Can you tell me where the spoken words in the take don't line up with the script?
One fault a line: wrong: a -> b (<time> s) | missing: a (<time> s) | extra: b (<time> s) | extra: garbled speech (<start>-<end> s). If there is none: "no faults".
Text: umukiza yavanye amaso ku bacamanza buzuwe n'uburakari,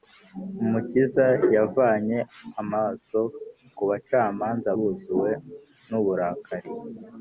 no faults